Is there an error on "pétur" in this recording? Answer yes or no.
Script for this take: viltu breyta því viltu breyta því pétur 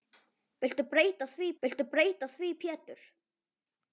no